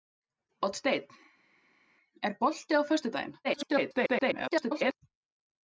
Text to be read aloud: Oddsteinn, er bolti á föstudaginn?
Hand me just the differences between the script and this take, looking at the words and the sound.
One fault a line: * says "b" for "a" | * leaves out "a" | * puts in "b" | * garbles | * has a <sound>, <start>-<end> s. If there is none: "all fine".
* garbles